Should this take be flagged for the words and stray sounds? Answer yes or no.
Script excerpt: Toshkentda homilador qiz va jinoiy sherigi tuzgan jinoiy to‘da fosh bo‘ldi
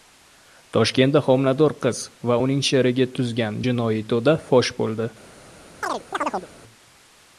yes